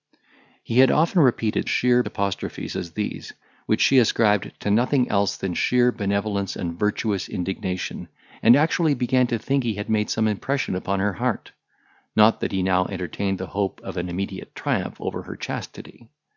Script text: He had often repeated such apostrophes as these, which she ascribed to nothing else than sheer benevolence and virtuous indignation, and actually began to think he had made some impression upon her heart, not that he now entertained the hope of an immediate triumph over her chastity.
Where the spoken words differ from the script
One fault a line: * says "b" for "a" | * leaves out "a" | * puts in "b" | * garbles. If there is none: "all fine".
* says "sheer" for "such"